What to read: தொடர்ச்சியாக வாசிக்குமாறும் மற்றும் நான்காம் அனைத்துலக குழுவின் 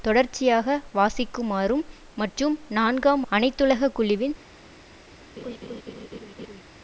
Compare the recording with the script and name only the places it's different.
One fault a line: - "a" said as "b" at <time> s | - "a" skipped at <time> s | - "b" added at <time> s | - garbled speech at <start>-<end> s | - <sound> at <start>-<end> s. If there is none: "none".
- laugh at 5.4-6.6 s